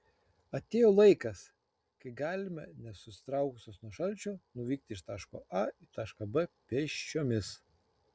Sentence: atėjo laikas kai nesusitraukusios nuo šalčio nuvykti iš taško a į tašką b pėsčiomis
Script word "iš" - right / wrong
right